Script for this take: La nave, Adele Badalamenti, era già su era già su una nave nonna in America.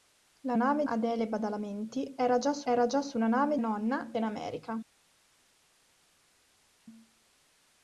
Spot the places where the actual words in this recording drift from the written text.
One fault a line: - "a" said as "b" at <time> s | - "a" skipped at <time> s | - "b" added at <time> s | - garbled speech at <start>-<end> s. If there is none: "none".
none